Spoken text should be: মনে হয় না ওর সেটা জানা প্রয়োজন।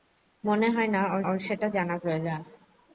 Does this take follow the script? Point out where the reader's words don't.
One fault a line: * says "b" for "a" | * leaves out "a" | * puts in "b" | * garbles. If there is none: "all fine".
* puts in "ওর"